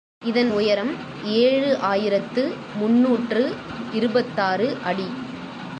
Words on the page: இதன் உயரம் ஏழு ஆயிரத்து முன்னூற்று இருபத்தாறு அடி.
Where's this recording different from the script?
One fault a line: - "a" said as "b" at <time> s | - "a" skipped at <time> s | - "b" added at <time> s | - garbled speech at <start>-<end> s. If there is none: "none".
none